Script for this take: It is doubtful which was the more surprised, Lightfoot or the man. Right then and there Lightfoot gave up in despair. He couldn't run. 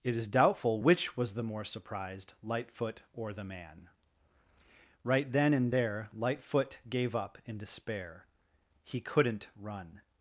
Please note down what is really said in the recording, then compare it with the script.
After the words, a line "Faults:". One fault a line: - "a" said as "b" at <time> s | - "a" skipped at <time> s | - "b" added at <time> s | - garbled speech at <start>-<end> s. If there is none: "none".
It is doubtful which was the more surprised, Lightfoot or the man. Right then and there Lightfoot gave up in despair. He couldn't run.
Faults:
none